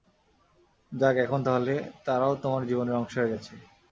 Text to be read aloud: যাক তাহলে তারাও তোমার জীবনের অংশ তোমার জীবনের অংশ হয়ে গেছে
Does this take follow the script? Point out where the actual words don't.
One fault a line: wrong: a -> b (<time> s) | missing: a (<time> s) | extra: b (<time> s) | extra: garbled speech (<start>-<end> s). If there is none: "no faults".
extra: এখন (1.2 s)
missing: তোমার জীবনের অংশ (3.1 s)